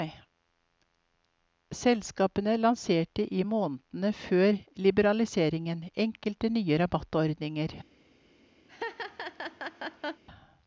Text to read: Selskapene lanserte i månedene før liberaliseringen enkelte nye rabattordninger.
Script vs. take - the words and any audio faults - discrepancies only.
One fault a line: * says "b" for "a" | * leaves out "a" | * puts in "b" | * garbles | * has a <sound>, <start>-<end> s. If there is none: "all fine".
* has a laugh, 8.7-10.2 s